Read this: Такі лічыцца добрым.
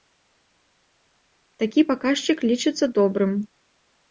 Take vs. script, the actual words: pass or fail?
fail